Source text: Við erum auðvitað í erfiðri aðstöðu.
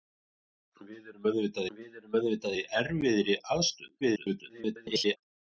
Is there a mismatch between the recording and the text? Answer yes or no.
yes